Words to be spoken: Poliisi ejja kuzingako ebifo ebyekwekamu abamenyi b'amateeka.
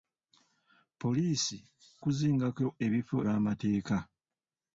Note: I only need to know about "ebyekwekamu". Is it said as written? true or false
false